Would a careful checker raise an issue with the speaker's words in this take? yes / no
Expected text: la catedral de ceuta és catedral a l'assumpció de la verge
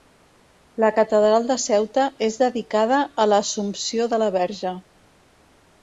yes